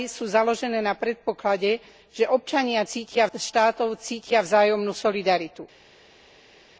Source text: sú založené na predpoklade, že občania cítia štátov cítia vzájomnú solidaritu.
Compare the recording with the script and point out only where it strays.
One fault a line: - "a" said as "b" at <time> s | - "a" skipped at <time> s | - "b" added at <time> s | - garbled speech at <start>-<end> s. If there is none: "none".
none